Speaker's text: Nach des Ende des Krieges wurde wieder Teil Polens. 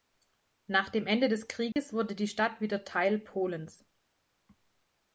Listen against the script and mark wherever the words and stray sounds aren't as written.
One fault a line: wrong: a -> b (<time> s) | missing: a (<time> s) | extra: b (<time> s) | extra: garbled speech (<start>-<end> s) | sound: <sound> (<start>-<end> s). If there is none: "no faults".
wrong: des -> dem (0.9 s)
sound: dropout (1.7-1.8 s)
extra: die Stadt (2.1 s)